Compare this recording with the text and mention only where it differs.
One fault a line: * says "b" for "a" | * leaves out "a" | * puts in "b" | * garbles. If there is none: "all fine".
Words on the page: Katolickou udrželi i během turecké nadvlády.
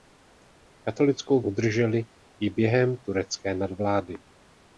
all fine